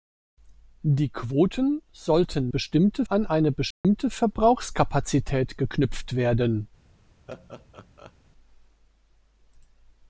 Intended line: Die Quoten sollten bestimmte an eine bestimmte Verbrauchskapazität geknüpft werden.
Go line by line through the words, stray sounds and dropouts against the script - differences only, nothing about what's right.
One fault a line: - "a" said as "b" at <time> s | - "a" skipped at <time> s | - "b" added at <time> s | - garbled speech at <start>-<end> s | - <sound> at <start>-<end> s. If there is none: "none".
- dropout at 3.7-3.8 s
- laugh at 7.3-8.1 s